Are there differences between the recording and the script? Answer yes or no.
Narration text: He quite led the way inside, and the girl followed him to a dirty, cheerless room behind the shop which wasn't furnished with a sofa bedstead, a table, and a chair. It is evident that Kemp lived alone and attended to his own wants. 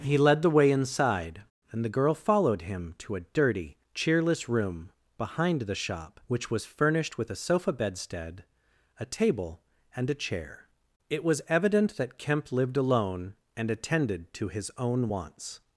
yes